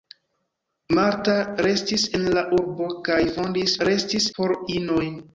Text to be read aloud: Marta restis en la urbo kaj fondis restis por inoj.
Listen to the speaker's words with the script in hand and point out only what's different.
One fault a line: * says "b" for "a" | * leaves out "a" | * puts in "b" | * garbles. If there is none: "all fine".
all fine